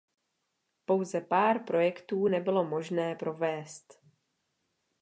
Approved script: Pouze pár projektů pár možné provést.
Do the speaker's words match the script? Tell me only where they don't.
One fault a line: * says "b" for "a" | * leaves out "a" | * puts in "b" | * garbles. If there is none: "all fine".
* says "nebylo" for "pár"